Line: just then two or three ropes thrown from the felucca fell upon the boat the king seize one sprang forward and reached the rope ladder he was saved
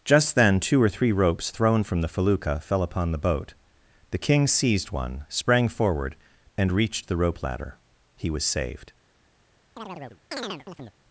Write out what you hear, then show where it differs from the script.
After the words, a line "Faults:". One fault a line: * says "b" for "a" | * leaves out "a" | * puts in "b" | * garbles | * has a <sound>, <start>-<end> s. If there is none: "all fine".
just then two or three ropes thrown from the felucca fell upon the boat the king seized one sprang forward and reached the rope ladder he was saved
Faults:
* says "seized" for "seize"
* has a chirp, 9.8-11.0 s